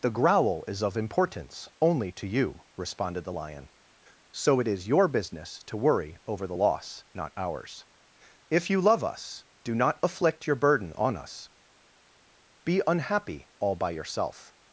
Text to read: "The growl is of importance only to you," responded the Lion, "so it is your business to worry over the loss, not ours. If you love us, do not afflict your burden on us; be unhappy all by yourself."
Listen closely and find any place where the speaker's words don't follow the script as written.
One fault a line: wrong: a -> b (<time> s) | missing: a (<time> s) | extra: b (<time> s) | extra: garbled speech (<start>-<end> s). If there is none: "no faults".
no faults